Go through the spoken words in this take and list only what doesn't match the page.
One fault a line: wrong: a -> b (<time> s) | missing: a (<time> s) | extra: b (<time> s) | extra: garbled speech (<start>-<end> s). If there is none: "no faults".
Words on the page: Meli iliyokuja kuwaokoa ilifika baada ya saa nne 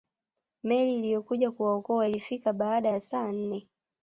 no faults